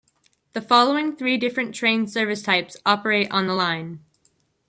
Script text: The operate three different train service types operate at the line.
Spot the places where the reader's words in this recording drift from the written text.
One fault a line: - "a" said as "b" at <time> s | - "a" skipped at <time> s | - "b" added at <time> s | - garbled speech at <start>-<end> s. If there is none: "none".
- "operate" said as "following" at 0.6 s
- "at" said as "on" at 3.3 s